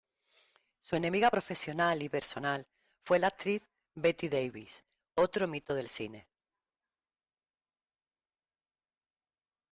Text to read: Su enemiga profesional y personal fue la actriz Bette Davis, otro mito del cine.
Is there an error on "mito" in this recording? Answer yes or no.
no